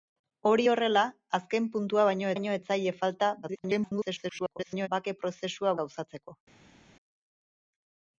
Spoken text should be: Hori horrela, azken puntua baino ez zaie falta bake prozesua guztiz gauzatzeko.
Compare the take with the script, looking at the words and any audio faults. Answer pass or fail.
fail